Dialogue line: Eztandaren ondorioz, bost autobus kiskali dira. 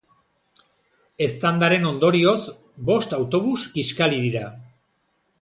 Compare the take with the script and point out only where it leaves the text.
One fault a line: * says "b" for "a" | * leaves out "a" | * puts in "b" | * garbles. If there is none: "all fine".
all fine